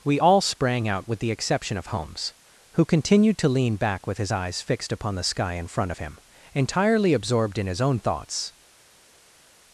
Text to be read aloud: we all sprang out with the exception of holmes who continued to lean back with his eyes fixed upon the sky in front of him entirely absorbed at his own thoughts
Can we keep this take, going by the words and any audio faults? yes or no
no